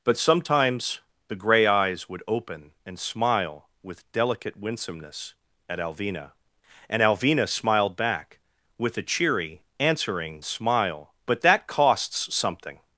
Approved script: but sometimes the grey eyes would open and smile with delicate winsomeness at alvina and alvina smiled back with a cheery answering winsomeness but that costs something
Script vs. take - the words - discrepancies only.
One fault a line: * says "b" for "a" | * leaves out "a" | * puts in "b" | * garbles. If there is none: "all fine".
* says "smile" for "winsomeness"